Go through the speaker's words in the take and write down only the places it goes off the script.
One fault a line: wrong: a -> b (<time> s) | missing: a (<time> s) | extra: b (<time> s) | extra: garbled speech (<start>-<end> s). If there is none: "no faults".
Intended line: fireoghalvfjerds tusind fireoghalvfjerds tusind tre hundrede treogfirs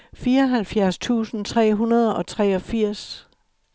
missing: fireoghalvfjerds tusind (1.4 s)
extra: og (2.1 s)